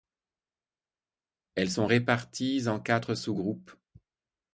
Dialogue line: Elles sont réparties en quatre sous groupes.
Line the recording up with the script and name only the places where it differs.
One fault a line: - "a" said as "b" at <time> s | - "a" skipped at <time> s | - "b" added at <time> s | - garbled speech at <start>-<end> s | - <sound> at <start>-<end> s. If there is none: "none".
none